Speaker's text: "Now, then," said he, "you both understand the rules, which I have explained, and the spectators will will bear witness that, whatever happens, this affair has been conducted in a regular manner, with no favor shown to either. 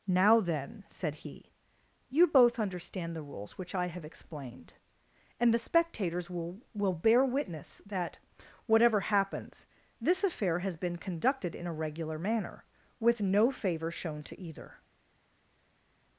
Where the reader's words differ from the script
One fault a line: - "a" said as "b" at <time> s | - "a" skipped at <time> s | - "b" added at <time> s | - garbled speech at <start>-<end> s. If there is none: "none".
none